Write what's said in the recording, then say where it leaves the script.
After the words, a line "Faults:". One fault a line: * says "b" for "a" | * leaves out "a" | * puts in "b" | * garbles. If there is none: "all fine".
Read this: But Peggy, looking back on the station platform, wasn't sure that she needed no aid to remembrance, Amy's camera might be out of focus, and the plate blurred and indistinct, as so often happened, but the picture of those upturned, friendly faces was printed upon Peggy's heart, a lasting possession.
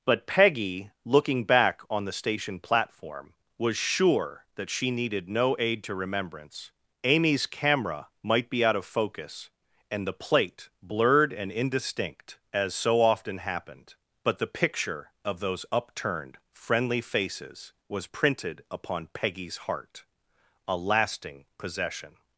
But Peggy, looking back on the station platform, was sure that she needed no aid to remembrance, Amy's camera might be out of focus, and the plate blurred and indistinct, as so often happened, but the picture of those upturned, friendly faces was printed upon Peggy's heart, a lasting possession.
Faults:
* says "was" for "wasn't"